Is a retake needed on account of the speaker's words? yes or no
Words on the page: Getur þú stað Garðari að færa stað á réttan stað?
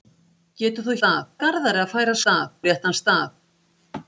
no